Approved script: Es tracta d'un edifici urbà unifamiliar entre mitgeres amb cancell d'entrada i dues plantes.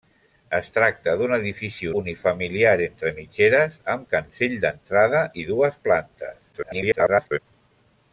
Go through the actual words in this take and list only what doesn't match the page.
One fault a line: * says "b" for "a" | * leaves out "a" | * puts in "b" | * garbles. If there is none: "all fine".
* leaves out "urbà"
* garbles